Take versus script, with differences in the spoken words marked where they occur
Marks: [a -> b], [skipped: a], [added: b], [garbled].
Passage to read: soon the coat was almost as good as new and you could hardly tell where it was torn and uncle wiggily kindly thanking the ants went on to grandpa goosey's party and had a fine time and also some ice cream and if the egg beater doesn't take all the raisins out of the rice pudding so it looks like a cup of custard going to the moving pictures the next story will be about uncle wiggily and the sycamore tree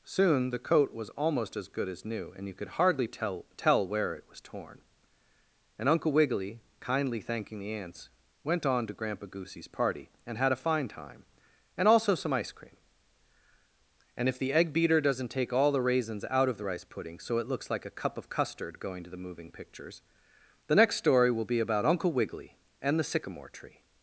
soon the coat was almost as good as new and you could hardly tell [added: tell] where it was torn and uncle wiggily kindly thanking the ants went on to grandpa goosey's party and had a fine time and also some ice cream and if the egg beater doesn't take all the raisins out of the rice pudding so it looks like a cup of custard going to the moving pictures the next story will be about uncle wiggily and the sycamore tree